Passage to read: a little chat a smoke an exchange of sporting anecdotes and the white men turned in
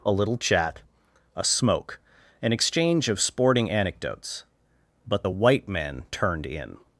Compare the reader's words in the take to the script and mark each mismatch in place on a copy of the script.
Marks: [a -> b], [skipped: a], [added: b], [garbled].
a little chat a smoke an exchange of sporting anecdotes [and -> but] the white men turned in